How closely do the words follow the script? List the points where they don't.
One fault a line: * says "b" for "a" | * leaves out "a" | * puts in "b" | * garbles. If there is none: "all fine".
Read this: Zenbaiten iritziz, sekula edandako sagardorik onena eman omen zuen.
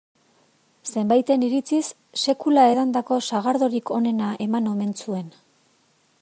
all fine